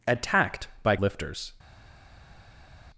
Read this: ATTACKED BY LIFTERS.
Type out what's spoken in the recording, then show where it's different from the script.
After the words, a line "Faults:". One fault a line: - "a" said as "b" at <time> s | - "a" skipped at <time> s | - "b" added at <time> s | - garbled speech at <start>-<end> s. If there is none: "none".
ATTACKED BY LIFTERS.
Faults:
none